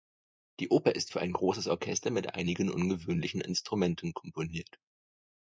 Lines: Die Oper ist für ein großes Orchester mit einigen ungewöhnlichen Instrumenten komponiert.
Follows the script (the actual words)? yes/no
yes